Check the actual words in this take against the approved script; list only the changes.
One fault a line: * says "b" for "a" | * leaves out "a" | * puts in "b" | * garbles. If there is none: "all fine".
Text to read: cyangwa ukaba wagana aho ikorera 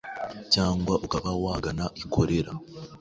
* leaves out "aho"